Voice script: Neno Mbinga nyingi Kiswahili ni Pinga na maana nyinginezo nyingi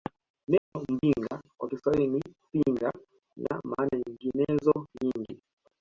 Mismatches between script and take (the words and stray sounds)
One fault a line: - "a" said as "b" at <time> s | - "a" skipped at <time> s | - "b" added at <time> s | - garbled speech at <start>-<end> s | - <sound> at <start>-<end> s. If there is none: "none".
- dropout at 0.6-0.7 s
- "nyingi" said as "kwa" at 1.6 s